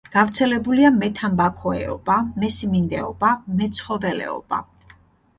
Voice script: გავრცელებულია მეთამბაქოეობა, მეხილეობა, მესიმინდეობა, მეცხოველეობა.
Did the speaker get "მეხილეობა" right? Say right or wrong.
wrong